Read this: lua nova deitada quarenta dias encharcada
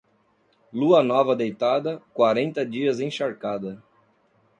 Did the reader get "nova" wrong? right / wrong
right